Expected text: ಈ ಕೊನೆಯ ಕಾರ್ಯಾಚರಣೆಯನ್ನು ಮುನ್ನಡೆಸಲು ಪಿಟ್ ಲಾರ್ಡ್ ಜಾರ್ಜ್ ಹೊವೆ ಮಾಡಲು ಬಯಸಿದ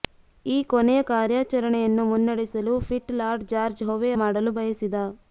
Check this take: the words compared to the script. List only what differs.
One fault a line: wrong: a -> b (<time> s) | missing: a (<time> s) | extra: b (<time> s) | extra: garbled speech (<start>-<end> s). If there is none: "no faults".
no faults